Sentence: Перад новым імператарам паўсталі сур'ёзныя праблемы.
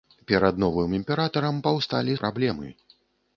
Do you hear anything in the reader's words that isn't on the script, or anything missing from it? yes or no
yes